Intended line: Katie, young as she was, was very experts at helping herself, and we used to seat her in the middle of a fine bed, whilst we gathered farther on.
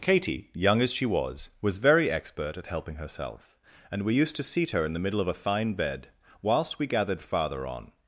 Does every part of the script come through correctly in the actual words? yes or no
no